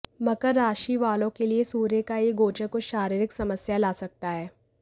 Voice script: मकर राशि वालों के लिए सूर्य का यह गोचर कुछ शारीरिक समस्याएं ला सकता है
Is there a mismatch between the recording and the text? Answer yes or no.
no